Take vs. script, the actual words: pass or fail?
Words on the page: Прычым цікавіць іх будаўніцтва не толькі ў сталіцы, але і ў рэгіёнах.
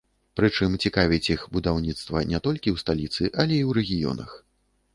pass